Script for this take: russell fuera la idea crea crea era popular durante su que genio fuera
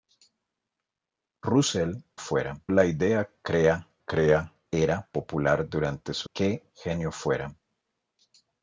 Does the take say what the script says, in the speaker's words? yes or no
yes